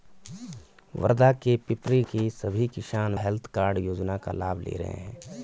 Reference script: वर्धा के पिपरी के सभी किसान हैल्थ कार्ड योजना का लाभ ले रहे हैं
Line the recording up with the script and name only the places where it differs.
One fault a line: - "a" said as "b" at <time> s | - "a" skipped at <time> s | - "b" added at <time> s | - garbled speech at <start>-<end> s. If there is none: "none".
none